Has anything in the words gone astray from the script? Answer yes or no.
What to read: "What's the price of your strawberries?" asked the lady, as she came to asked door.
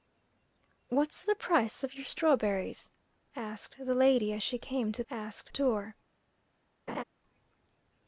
no